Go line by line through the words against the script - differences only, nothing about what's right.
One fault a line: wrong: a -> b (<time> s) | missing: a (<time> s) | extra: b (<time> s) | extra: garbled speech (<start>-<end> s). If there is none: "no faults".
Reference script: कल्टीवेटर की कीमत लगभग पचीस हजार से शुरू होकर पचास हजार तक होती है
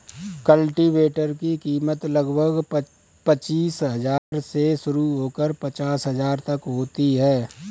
no faults